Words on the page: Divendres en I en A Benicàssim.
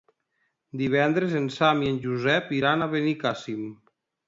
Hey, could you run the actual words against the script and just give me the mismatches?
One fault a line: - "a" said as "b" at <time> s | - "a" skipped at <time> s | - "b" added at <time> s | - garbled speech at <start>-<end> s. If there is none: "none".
- "Sam" added at 1.6 s
- "Josep iran" added at 2.1 s